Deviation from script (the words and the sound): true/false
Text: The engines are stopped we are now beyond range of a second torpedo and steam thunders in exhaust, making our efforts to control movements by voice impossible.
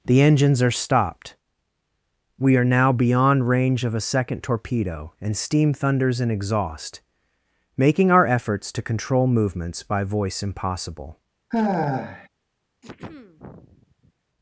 true